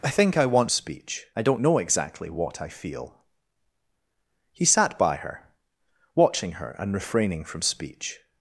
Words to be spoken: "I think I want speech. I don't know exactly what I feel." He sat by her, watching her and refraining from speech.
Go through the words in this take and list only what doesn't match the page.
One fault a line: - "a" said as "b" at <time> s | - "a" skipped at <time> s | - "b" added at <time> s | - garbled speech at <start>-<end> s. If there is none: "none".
none